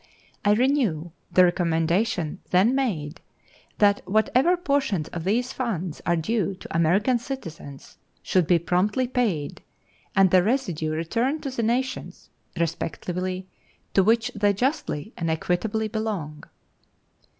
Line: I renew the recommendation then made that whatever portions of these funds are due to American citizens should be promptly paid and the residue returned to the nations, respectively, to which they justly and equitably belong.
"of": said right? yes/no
yes